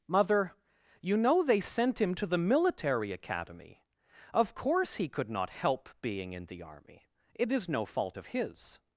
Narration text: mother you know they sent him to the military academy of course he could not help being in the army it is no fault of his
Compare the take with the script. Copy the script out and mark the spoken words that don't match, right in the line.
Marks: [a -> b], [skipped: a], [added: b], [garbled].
mother you know they sent him to the military academy of course he could not help being in the army it is no fault of his